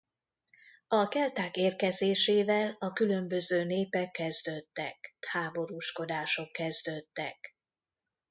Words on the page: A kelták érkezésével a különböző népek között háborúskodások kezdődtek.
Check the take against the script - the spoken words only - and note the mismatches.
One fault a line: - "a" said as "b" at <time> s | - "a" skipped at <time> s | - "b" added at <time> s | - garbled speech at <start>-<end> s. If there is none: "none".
- "között" said as "kezdődtek" at 4.1 s